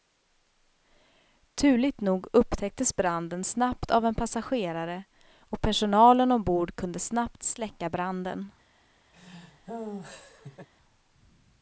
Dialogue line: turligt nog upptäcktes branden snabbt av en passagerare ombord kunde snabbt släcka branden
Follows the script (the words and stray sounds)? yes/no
no